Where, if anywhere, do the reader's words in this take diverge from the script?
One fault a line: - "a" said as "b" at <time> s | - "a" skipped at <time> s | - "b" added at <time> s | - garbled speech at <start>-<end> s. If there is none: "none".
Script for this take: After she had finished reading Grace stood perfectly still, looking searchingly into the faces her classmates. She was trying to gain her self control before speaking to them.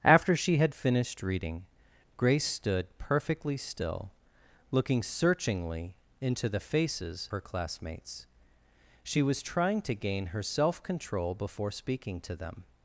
none